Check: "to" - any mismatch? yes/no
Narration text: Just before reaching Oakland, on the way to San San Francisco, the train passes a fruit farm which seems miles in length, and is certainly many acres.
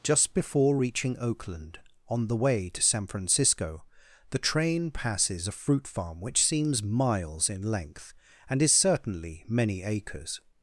no